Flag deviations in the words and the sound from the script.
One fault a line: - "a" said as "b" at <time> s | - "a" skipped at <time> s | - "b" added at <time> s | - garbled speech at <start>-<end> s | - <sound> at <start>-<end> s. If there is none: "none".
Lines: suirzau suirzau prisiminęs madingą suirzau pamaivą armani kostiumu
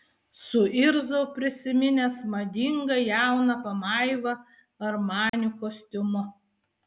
- "suirzau" skipped at 1.2 s
- "suirzau" said as "jauną" at 3.1 s
- dropout at 5.3-5.3 s